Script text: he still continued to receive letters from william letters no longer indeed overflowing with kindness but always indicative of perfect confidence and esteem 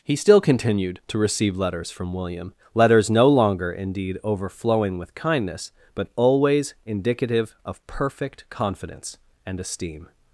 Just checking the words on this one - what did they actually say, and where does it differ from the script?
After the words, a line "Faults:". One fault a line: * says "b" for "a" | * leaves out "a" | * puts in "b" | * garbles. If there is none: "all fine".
he still continued to receive letters from william letters no longer indeed overflowing with kindness but always indicative of perfect confidence and esteem
Faults:
all fine